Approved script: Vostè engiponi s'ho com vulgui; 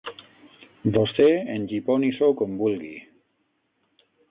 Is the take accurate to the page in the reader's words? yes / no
yes